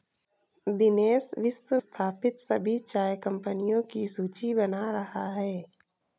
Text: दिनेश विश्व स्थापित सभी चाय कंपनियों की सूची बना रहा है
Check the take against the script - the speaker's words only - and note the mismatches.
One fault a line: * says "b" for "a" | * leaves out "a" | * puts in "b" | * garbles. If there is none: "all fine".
all fine